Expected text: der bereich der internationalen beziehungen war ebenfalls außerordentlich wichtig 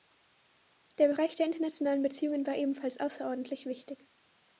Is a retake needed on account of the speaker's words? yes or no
no